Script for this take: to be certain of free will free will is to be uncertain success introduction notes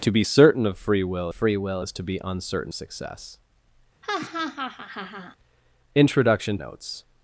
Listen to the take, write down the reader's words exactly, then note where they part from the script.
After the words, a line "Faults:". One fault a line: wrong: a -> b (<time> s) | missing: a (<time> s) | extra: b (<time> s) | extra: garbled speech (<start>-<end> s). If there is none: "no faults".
to be certain of free will free will is to be uncertain success introduction notes
Faults:
no faults